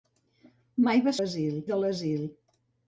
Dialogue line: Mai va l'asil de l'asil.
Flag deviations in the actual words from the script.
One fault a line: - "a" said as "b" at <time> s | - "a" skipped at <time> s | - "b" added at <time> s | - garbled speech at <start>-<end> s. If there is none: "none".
none